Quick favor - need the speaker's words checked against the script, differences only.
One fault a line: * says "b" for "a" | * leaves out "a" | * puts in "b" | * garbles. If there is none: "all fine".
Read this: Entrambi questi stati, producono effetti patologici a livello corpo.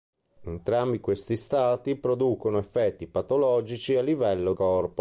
all fine